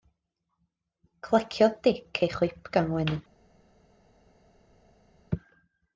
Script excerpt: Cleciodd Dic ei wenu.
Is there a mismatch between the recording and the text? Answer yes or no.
yes